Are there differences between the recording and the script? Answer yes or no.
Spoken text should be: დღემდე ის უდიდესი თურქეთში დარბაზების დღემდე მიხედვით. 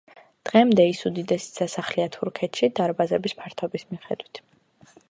yes